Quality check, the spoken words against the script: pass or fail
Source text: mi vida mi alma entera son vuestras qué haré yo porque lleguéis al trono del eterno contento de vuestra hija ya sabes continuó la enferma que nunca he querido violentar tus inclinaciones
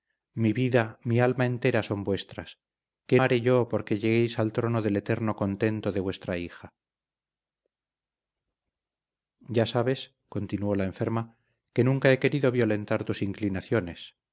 pass